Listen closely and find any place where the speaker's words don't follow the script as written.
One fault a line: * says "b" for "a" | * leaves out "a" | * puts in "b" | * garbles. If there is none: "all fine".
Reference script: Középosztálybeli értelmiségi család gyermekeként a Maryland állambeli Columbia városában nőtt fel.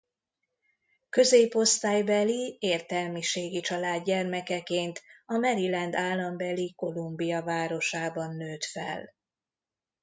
all fine